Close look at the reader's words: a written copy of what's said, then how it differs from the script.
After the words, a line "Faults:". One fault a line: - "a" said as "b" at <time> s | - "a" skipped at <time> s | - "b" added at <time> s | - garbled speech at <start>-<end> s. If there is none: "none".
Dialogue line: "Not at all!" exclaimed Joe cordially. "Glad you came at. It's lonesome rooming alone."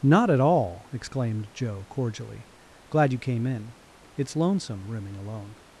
"Not at all!" exclaimed Joe cordially. "Glad you came in. It's lonesome rooming alone."
Faults:
- "at" said as "in" at 3.5 s